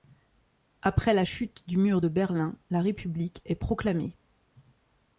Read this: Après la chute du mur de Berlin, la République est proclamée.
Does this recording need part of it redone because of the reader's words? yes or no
no